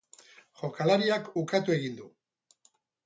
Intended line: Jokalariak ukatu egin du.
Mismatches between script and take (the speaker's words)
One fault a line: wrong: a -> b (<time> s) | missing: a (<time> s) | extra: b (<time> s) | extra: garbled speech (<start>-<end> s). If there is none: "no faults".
no faults